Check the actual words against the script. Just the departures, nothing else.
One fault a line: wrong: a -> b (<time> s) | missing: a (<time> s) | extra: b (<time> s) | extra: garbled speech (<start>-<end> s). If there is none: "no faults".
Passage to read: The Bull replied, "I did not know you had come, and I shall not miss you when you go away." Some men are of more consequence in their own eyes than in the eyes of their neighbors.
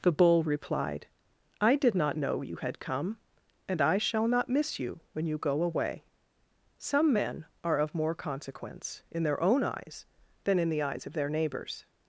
no faults